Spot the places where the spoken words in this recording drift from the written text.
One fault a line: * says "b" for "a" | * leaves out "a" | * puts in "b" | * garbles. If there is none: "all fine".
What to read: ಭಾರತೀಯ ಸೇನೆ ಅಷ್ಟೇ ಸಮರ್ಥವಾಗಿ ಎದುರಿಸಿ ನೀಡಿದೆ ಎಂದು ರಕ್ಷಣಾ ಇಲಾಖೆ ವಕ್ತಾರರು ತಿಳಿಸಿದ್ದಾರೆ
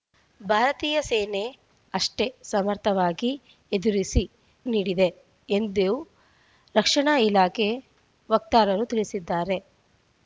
all fine